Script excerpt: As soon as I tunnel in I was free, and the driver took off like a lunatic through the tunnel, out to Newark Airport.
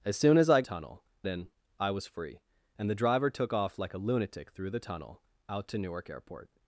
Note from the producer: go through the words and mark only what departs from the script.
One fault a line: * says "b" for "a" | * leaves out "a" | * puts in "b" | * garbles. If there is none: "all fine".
all fine